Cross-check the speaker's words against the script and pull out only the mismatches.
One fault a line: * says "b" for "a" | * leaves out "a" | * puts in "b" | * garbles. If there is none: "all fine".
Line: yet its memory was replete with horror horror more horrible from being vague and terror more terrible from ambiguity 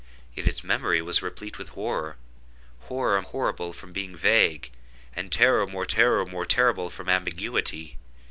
* leaves out "more"
* puts in "terror more"